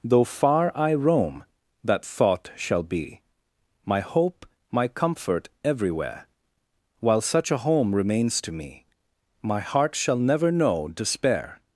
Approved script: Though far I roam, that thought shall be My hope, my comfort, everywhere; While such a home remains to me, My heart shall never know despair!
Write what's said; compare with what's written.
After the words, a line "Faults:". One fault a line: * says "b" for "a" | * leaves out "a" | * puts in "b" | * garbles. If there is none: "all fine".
Though far I roam, that thought shall be My hope, my comfort, everywhere; While such a home remains to me, My heart shall never know despair!
Faults:
all fine